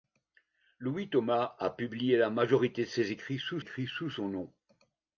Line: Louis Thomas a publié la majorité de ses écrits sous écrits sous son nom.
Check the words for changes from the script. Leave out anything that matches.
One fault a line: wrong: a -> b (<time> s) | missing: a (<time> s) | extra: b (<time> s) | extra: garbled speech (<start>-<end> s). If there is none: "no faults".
no faults